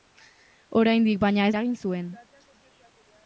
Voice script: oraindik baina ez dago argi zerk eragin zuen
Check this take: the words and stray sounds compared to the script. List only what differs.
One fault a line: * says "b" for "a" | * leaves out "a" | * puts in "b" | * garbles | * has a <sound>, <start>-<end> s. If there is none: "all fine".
* leaves out "dago argi zerk"